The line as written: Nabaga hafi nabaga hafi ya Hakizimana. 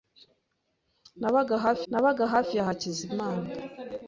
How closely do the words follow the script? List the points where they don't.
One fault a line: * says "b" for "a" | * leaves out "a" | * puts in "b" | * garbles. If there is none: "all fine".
all fine